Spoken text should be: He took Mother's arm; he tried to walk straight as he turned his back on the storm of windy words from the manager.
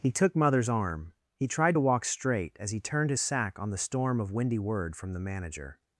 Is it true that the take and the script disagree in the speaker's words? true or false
true